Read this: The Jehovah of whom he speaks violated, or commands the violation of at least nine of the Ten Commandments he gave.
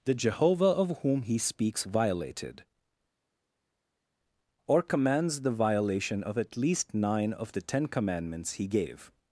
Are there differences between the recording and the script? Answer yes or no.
no